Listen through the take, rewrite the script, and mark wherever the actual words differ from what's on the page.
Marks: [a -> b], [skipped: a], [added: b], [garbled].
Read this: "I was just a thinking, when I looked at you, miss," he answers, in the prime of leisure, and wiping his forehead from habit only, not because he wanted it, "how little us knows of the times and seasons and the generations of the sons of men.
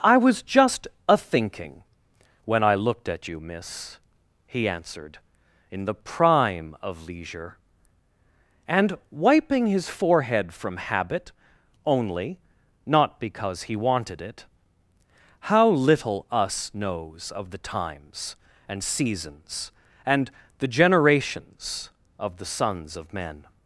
"I was just a thinking, when I looked at you, miss," he [answers, -> answered] in the prime of leisure, and wiping his forehead from habit only, not because he wanted it, "how little us knows of the times and seasons and the generations of the sons of men.